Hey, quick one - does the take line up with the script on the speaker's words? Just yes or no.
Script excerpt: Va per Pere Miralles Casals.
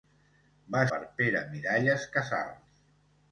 yes